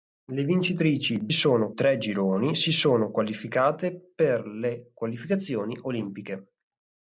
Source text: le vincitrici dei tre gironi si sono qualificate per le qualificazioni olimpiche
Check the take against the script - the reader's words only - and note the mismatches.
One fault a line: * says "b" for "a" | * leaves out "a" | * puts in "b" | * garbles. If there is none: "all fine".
* says "sono" for "dei"